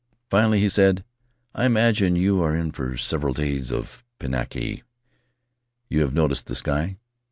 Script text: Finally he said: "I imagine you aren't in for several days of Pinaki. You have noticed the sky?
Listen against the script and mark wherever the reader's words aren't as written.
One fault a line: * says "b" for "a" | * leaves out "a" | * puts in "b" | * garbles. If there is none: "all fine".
* says "are" for "aren't"